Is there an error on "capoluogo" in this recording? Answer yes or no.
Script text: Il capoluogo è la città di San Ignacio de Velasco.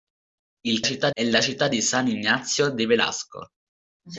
yes